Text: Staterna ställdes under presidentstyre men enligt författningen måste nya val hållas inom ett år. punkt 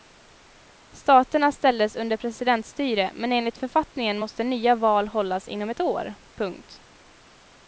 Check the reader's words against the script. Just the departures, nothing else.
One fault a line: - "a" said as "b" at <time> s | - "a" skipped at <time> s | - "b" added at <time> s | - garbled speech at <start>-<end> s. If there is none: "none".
none